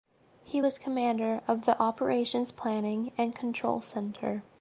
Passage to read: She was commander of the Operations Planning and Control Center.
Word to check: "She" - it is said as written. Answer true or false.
false